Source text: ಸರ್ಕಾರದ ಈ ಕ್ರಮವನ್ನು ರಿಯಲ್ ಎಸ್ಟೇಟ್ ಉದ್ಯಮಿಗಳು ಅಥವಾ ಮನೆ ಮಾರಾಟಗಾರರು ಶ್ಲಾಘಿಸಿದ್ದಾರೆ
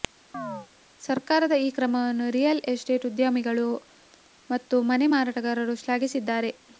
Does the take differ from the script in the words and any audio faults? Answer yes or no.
yes